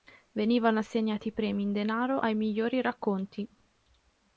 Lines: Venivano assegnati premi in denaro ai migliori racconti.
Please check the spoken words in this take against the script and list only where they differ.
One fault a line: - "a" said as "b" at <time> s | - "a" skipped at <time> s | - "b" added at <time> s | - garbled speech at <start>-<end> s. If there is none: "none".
none